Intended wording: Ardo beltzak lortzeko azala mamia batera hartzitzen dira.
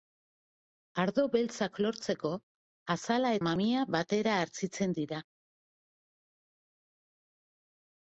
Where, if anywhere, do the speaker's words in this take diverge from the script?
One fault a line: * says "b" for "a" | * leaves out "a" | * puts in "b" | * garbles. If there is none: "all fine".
all fine